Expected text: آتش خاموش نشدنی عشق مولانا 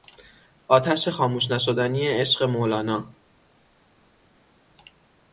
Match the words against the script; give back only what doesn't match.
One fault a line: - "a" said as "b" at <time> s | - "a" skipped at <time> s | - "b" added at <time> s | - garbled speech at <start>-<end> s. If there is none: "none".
none